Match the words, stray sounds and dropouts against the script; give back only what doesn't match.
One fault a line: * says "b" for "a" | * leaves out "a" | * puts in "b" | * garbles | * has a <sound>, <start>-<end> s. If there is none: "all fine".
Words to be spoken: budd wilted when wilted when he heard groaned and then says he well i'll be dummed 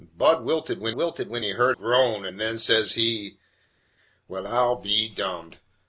all fine